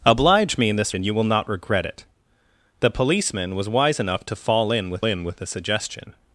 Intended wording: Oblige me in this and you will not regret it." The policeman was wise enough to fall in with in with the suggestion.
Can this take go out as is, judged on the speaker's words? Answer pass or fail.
pass